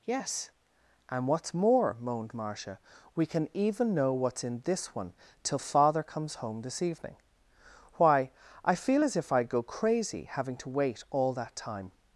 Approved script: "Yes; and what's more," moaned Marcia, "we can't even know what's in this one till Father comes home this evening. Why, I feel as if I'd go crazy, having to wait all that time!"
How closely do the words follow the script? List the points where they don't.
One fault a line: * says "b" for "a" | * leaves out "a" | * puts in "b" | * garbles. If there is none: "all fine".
* says "can" for "can't"